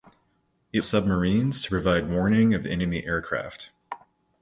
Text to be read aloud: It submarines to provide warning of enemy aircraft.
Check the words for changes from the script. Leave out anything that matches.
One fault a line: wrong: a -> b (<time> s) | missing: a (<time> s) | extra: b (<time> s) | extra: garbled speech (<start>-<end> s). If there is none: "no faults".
no faults